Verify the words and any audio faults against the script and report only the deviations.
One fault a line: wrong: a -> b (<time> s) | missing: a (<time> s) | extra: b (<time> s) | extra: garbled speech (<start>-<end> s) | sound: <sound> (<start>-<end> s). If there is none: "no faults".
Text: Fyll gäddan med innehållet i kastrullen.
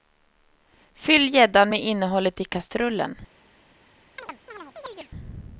sound: chirp (4.2-5.1 s)